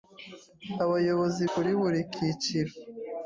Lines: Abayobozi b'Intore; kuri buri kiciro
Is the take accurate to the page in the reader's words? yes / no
no